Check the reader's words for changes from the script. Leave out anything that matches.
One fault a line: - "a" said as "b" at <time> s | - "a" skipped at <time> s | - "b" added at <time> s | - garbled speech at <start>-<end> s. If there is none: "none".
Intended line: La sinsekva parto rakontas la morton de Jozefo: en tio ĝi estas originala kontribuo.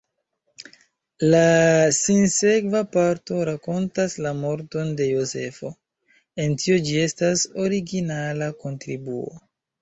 none